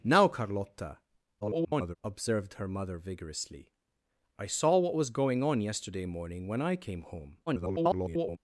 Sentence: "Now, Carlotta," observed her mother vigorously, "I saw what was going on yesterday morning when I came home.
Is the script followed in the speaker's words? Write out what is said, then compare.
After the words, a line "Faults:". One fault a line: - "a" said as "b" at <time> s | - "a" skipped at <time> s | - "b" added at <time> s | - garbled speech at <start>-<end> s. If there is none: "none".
"Now, Carlotta," [garbled] observed her mother vigorously, "I saw what was going on yesterday morning when I came home. [garbled]
Faults:
- garbled speech at 1.4-2.0 s
- garbled speech at 7.5-8.4 s